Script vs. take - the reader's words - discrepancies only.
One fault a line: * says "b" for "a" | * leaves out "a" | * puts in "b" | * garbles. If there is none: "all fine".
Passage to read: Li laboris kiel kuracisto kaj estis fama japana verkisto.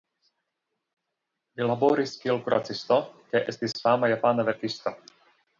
all fine